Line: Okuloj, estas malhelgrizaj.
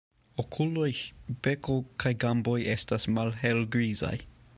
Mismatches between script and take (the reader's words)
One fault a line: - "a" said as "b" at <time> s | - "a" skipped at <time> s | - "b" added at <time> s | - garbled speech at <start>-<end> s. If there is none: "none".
- "beko kaj gamboj" added at 1.5 s